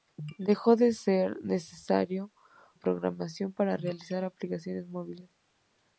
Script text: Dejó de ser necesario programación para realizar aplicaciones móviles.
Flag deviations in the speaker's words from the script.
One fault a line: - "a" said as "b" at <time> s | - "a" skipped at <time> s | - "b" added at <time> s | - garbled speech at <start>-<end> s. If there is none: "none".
none